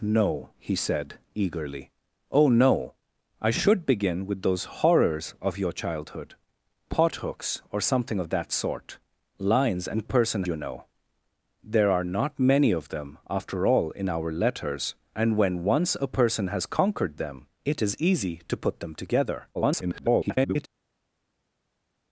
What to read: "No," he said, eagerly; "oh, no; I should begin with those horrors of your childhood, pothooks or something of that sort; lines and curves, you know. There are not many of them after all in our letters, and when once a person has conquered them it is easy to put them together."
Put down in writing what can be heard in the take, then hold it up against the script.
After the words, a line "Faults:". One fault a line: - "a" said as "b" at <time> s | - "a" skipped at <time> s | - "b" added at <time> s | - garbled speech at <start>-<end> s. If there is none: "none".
"No," he said, eagerly; "oh, no; I should begin with those horrors of your childhood, pothooks or something of that sort; lines and person, you know. There are not many of them after all in our letters, and when once a person has conquered them it is easy to put them together." [garbled]
Faults:
- "curves" said as "person" at 10.0 s
- garbled speech at 19.5-20.7 s